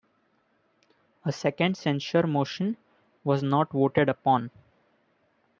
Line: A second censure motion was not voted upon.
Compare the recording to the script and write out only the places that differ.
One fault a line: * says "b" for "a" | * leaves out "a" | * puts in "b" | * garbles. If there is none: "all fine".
all fine